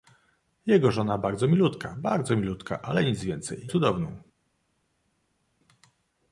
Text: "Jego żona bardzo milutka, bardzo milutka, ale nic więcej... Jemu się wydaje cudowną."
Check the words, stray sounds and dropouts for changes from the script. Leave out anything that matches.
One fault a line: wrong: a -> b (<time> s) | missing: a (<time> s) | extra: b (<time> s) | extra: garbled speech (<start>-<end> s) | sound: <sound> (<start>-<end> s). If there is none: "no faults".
missing: Jemu się wydaje (3.7 s)